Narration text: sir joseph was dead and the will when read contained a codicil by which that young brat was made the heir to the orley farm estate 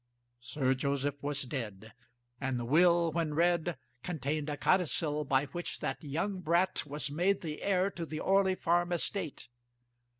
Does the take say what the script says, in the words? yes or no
yes